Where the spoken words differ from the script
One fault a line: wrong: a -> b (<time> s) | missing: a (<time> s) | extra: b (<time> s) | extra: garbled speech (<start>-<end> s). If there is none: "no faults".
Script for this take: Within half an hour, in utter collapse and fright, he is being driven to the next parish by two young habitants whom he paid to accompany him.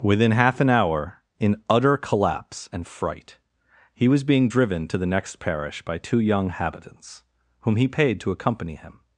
wrong: is -> was (4.1 s)